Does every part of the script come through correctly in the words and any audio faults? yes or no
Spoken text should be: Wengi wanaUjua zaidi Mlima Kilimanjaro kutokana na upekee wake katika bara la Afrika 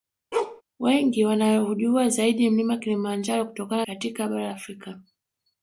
no